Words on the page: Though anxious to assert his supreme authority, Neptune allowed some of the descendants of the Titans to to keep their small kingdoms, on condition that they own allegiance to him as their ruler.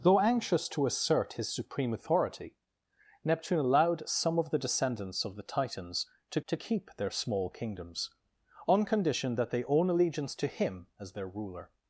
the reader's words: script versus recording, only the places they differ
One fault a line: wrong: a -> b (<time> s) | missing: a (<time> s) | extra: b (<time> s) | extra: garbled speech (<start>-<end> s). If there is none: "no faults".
no faults